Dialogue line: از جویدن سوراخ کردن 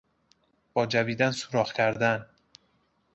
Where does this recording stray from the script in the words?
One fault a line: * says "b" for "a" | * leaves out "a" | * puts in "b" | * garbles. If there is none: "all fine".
* says "با" for "از"